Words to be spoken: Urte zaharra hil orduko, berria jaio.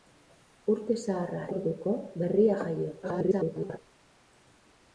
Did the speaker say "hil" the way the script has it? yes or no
no